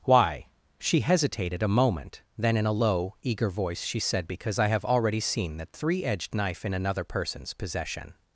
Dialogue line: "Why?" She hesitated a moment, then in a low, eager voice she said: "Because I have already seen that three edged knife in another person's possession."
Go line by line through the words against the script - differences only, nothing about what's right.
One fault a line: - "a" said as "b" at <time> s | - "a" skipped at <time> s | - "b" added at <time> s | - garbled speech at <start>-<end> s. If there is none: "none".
none